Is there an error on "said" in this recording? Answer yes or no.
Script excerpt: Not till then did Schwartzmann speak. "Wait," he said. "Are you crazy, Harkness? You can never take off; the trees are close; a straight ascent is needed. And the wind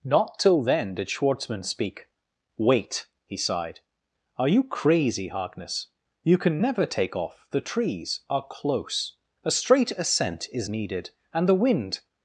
yes